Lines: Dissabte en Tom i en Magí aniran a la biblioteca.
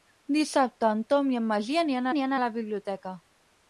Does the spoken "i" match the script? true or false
true